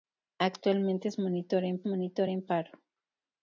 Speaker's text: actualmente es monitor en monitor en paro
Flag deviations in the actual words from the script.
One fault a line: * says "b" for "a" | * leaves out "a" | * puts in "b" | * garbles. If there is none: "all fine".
all fine